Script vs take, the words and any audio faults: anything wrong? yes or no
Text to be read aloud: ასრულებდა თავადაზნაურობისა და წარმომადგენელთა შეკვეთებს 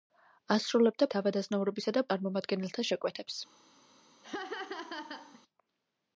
yes